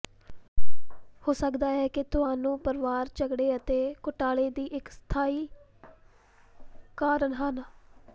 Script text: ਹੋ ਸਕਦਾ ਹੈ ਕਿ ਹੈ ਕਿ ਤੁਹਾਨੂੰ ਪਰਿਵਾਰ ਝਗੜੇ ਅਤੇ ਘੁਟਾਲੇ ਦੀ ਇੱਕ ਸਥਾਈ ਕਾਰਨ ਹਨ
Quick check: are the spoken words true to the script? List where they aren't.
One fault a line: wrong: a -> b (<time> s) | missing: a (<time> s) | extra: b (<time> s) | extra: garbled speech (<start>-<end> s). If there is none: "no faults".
missing: ਹੈ ਕਿ (2.0 s)